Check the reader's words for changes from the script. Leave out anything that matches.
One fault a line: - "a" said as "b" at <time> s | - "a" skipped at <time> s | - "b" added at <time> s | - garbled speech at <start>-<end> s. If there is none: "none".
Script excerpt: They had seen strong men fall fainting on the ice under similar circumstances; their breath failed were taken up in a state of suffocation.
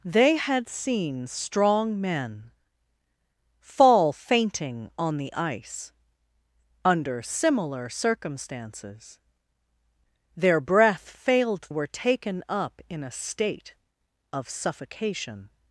none